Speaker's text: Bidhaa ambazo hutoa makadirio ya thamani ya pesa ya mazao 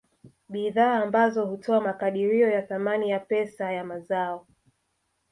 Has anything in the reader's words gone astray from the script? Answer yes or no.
no